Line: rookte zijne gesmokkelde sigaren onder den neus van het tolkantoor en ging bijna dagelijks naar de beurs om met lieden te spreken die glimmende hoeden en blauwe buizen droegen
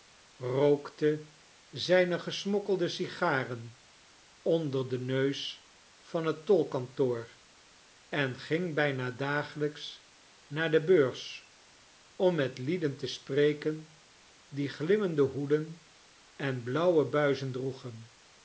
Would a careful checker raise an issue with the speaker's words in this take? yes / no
no